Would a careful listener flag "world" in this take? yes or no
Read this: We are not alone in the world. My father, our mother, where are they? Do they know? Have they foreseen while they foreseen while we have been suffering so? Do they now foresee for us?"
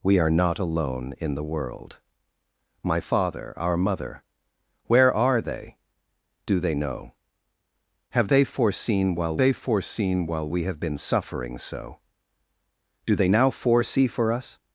no